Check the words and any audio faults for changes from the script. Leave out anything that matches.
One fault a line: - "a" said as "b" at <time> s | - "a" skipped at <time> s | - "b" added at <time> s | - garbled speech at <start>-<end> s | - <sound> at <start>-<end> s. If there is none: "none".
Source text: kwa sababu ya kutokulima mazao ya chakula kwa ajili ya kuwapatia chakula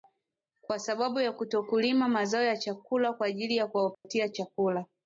- dropout at 3.9-4.0 s